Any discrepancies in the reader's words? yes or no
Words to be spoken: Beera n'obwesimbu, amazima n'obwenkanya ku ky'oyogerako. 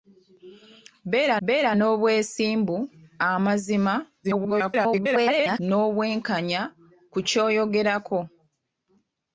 yes